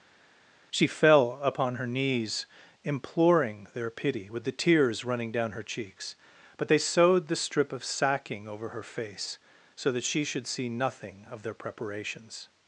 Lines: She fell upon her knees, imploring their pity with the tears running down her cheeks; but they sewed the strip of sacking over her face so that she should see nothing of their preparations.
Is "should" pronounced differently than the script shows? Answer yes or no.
no